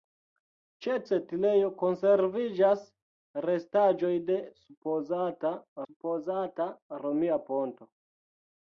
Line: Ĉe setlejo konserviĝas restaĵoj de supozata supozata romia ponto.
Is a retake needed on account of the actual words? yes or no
no